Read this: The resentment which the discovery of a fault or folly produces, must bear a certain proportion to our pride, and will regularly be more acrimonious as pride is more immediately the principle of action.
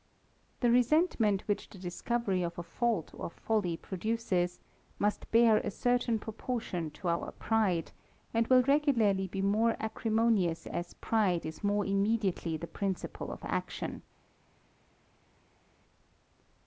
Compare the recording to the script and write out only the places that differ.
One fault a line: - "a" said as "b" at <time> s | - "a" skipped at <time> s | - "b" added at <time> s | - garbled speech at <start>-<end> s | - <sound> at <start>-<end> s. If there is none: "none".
none